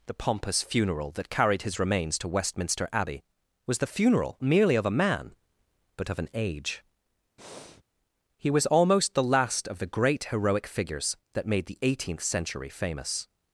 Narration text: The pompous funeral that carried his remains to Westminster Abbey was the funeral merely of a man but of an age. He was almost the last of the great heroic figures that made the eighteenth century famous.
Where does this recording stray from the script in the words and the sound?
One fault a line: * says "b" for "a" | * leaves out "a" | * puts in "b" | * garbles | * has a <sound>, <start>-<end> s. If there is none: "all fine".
* has a breath, 7.4-7.8 s